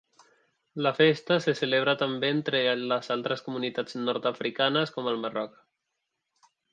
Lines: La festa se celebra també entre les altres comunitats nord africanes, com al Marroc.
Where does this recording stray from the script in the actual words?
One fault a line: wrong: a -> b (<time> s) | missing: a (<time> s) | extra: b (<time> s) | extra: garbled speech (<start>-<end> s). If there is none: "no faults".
no faults